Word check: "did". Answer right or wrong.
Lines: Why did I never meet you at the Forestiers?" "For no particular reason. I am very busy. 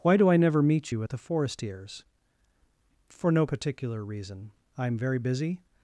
wrong